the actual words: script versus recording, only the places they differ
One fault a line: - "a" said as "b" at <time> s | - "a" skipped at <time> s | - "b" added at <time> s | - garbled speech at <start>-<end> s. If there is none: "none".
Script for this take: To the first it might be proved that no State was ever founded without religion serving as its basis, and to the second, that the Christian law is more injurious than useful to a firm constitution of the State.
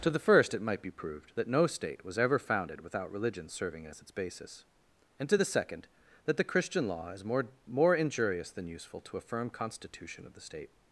- "more" added at 7.7 s